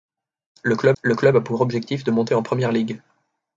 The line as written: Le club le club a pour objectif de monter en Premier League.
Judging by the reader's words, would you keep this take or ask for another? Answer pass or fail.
pass